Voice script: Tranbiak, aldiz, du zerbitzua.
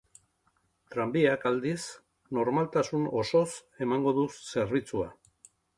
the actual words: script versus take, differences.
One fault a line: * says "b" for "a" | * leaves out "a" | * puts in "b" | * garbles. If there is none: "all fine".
* puts in "normaltasun osoz emango"